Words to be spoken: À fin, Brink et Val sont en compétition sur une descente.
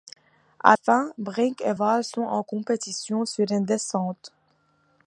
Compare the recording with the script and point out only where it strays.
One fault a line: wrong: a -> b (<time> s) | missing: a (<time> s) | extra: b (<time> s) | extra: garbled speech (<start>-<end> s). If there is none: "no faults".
no faults